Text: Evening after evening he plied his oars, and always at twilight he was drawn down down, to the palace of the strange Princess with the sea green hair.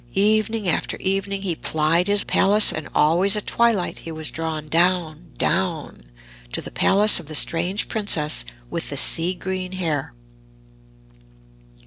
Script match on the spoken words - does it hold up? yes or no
no